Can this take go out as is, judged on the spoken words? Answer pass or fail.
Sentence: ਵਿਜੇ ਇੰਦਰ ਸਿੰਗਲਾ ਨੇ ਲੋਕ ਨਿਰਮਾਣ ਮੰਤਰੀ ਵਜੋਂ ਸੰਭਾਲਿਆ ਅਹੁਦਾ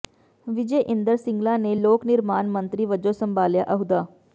pass